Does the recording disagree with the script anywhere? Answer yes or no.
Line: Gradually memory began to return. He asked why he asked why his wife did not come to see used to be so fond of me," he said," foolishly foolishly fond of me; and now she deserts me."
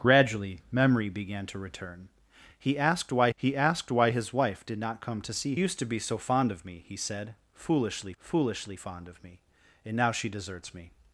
no